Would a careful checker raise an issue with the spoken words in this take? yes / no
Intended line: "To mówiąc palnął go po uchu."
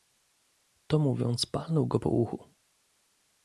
no